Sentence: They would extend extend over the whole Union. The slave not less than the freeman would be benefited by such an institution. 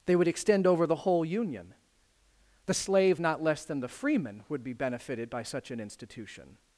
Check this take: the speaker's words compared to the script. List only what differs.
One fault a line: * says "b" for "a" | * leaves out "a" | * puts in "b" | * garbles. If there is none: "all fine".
* leaves out "extend"